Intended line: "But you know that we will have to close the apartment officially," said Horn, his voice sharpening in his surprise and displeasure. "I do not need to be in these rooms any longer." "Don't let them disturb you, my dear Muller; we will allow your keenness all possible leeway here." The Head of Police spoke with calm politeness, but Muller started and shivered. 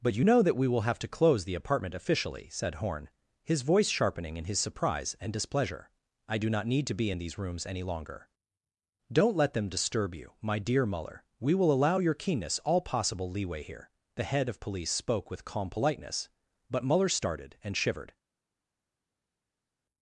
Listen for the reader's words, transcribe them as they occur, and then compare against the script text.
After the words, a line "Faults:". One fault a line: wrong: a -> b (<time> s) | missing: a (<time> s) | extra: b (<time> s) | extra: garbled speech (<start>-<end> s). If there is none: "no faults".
"But you know that we will have to close the apartment officially," said Horn, his voice sharpening in his surprise and displeasure. "I do not need to be in these rooms any longer." "Don't let them disturb you, my dear Muller; we will allow your keenness all possible leeway here." The Head of Police spoke with calm politeness, but Muller started and shivered.
Faults:
no faults